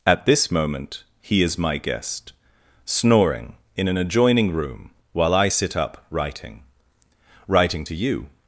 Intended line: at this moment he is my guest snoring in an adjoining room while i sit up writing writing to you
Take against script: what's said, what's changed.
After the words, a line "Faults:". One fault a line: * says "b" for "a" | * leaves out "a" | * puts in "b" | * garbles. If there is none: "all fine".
at this moment he is my guest snoring in an adjoining room while i sit up writing writing to you
Faults:
all fine